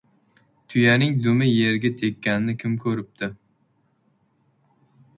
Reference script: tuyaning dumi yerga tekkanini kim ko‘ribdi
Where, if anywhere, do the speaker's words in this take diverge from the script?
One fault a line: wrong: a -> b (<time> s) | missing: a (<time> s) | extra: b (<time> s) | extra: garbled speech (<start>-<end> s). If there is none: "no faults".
no faults